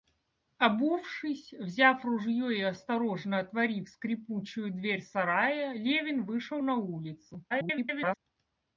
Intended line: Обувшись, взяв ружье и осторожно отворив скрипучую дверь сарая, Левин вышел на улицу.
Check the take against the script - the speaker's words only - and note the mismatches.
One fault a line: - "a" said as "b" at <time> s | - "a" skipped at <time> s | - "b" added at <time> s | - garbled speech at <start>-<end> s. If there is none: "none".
- garbled speech at 7.5-8.2 s